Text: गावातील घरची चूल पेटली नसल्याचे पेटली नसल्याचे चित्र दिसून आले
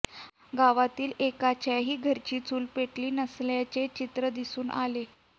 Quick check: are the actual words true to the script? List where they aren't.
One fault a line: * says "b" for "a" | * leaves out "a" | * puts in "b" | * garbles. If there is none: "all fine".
* puts in "एकाच्याही"
* leaves out "पेटली नसल्याचे"